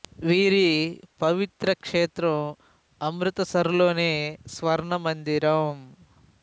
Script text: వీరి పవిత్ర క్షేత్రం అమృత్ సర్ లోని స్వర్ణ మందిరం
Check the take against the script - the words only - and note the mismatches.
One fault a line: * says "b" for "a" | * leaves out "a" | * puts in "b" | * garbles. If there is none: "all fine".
all fine